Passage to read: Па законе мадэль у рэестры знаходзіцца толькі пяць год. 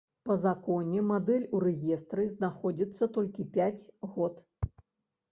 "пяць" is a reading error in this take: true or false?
false